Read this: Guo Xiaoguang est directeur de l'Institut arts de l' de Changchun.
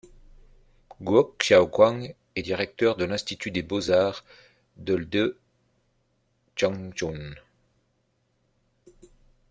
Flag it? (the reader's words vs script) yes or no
yes